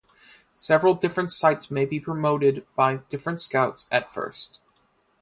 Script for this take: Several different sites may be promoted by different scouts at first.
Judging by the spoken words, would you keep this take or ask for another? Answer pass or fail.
pass